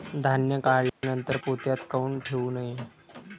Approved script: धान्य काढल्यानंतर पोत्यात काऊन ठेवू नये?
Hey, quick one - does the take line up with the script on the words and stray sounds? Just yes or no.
no